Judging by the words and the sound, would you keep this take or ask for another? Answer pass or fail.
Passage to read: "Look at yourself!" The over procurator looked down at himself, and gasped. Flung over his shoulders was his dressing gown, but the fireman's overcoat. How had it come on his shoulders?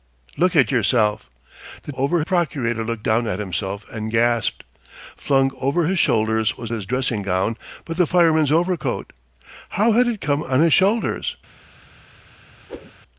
fail